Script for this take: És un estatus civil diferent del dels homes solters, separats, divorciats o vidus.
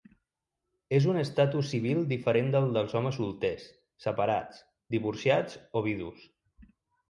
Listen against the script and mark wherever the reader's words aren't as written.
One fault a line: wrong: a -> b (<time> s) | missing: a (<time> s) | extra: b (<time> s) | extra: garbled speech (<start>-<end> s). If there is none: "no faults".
no faults